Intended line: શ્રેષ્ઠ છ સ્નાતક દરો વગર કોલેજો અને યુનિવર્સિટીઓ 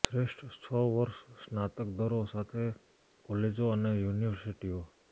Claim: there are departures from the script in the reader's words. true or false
true